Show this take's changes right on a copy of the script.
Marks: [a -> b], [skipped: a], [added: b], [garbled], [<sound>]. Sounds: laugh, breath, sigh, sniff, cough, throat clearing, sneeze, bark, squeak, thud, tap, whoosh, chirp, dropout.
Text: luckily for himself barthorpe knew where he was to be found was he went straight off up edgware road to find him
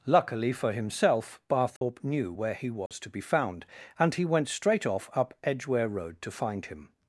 luckily for himself barthorpe [dropout] knew where he was [dropout] to be found [was -> and] he went straight off up edgware road to find him